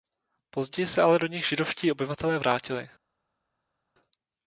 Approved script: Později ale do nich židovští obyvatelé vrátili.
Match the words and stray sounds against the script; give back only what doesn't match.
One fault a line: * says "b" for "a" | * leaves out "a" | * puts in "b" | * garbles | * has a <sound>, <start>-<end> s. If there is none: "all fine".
* puts in "se"